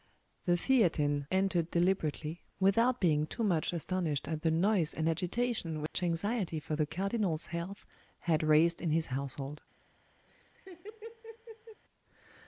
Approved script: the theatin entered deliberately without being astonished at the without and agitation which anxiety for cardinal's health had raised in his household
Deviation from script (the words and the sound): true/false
true